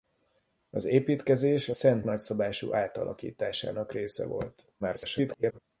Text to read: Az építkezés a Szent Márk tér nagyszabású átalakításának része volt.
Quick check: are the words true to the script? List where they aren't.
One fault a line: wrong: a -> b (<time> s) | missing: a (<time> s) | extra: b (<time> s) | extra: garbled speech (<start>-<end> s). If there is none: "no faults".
missing: Márk tér (2.0 s)
extra: garbled speech (4.8-5.6 s)